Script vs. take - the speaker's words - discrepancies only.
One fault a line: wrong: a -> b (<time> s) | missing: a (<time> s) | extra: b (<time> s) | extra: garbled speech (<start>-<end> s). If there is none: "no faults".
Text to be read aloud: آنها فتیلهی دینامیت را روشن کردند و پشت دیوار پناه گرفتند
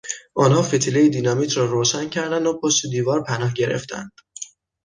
no faults